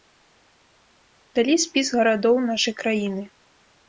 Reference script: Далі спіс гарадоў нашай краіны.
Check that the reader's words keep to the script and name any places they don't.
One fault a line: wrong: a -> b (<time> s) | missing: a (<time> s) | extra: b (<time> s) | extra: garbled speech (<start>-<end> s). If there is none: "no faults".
no faults